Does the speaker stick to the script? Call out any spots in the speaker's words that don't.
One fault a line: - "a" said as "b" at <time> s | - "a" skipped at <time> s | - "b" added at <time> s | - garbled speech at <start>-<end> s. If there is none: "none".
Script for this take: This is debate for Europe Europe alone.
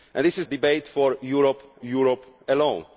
none